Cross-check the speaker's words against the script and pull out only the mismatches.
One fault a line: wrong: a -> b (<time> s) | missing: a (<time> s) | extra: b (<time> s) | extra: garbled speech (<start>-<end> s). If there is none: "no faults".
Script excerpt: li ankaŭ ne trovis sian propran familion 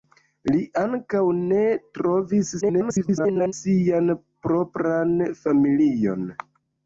extra: garbled speech (2.6-3.5 s)